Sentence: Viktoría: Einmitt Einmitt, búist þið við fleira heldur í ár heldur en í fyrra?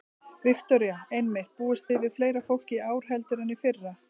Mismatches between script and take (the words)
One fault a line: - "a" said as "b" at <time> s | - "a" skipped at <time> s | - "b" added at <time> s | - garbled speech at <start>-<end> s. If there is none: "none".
- "Einmitt" skipped at 1.5 s
- "heldur" said as "fólki" at 2.5 s